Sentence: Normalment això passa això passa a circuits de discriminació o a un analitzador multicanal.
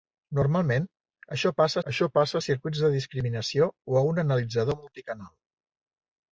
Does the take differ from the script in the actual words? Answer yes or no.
no